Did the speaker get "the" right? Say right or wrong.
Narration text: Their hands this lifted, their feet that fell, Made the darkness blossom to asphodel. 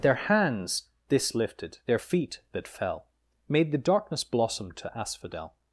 right